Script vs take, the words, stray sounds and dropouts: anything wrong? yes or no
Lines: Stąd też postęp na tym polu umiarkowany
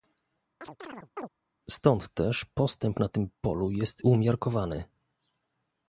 yes